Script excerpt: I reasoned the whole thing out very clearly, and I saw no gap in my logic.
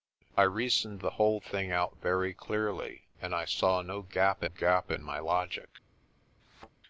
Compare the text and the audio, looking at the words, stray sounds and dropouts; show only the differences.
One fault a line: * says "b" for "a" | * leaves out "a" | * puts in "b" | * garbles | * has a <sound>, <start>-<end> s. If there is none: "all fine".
* puts in "gap"
* has a thud, 6.4-6.7 s